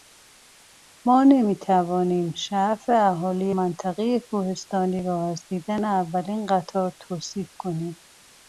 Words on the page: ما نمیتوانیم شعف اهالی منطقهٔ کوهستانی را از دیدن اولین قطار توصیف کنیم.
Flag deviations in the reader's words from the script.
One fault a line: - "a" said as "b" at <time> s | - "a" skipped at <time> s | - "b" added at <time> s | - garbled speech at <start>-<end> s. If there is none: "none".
none